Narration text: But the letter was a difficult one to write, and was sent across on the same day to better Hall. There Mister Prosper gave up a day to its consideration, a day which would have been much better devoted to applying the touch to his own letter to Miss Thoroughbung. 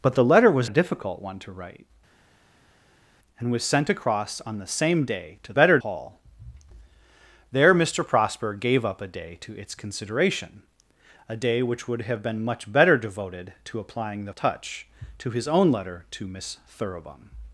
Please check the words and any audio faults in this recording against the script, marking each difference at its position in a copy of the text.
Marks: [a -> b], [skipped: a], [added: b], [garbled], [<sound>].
But the letter was a difficult one to write, and was sent across on the same day to better Hall. There Mister Prosper gave up a day to its consideration, a day which would have been much better devoted to applying the touch to his own letter to Miss Thoroughbung.